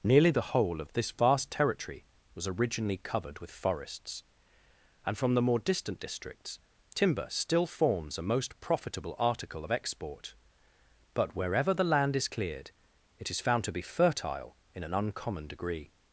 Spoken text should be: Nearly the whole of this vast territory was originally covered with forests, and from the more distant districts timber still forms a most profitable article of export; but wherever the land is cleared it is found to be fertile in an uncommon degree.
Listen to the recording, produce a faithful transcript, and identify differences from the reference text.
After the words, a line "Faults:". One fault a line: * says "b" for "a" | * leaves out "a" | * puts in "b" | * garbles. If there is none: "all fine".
Nearly the whole of this vast territory was originally covered with forests, and from the more distant districts timber still forms a most profitable article of export; but wherever the land is cleared it is found to be fertile in an uncommon degree.
Faults:
all fine